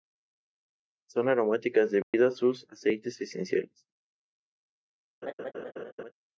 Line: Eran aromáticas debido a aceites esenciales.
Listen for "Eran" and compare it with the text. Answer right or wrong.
wrong